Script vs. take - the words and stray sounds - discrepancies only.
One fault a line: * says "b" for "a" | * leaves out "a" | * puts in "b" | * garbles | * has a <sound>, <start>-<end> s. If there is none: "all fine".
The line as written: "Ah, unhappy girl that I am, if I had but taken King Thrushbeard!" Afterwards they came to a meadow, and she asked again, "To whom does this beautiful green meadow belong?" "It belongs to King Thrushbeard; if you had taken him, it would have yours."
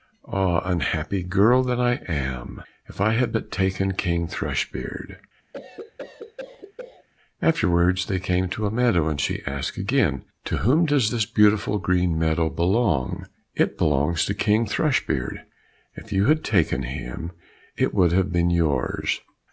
* has a cough, 5.5-7.1 s
* puts in "been"